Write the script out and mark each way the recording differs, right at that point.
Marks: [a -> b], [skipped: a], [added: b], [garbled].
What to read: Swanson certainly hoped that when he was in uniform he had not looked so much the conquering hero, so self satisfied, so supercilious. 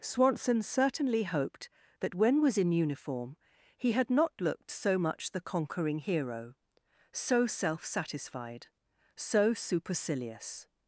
Swanson certainly hoped that when [skipped: he] was in uniform he had not looked so much the conquering hero, so self satisfied, so supercilious.